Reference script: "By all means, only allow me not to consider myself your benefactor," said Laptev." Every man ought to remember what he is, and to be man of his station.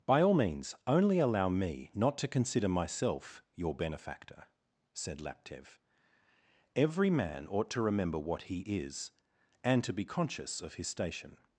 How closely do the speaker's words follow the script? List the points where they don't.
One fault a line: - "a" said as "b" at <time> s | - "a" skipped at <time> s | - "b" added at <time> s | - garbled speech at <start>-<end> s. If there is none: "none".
- "man" said as "conscious" at 10.1 s